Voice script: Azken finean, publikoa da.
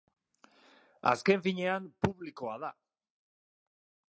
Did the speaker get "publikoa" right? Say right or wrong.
right